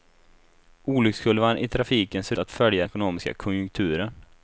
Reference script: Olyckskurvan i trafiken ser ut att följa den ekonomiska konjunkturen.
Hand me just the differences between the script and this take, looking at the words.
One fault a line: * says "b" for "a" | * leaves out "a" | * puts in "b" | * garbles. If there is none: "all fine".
* leaves out "ut"
* leaves out "den"